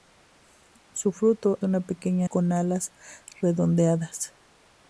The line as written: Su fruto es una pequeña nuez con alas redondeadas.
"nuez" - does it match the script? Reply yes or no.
no